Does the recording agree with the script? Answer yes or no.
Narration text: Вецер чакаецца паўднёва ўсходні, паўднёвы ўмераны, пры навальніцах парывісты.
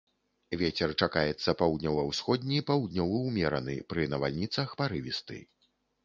yes